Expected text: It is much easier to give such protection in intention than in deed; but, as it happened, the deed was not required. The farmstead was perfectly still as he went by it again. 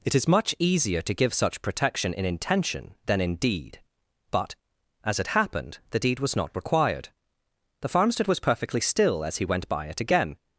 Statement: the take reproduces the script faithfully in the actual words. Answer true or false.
true